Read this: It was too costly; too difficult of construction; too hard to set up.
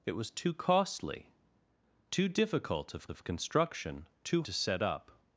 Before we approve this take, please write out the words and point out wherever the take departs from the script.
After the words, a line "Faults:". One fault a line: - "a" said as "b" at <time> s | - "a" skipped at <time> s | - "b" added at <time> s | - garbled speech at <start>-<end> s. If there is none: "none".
It was too costly; too difficult of of construction; too to set up.
Faults:
- "of" added at 3.1 s
- "hard" skipped at 4.4 s